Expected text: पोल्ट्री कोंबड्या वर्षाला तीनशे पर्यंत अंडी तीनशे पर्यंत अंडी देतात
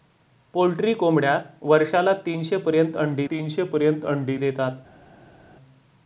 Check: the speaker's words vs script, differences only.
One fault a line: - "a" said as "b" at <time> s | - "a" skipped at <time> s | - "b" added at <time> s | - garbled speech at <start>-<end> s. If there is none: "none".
none